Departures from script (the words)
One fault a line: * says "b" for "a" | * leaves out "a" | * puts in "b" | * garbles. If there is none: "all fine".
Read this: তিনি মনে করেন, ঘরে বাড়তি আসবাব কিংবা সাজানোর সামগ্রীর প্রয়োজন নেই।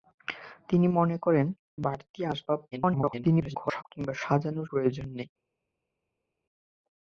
* leaves out "ঘরে"
* garbles
* leaves out "সামগ্রীর"